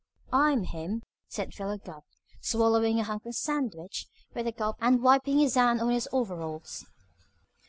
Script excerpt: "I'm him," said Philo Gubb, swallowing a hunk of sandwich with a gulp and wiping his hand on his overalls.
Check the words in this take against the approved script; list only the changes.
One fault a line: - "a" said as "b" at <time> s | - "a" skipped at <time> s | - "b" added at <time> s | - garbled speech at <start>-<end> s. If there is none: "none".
none